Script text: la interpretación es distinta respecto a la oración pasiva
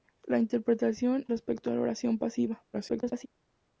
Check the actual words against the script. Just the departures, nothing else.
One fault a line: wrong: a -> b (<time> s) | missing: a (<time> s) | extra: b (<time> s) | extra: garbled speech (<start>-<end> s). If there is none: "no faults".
missing: es distinta (1.2 s)
extra: garbled speech (2.7-3.3 s)